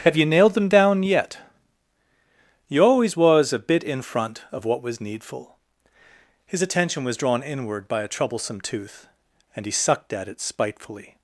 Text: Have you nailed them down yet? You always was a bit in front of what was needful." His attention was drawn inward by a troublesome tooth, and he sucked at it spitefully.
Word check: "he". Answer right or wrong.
right